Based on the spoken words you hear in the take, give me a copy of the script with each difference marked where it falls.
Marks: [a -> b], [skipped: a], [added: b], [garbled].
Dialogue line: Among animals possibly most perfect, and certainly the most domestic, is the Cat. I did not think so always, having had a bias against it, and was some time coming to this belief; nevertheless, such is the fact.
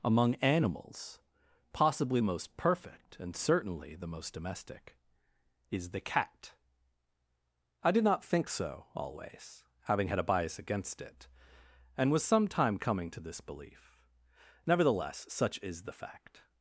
Among animals possibly most perfect, and certainly the most domestic, is the Cat. I did not think so always, having had a bias against it, and was some time coming to this belief; nevertheless, such is the fact.